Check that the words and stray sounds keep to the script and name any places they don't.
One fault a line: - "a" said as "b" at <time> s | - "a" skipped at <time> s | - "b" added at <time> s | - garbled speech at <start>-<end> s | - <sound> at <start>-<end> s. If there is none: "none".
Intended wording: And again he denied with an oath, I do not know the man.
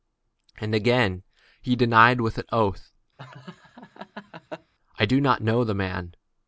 - laugh at 3.2-4.7 s